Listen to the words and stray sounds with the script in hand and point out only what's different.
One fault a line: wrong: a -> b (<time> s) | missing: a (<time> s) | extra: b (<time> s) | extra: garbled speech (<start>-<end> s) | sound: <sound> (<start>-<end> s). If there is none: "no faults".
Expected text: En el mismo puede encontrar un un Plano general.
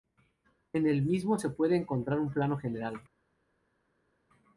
extra: se (1.4 s)
missing: un (2.3 s)